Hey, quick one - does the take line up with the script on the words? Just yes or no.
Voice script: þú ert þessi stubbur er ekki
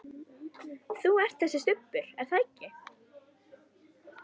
no